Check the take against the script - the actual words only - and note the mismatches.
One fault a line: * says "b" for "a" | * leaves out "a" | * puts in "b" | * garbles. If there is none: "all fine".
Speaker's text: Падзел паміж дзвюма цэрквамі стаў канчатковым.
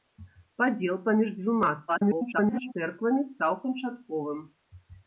* garbles